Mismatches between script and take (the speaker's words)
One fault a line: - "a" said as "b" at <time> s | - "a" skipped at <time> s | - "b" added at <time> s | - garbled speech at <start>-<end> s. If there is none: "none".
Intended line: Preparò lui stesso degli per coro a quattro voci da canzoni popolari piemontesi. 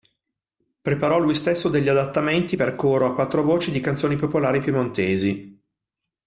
- "adattamenti" added at 1.9 s
- "da" said as "di" at 3.7 s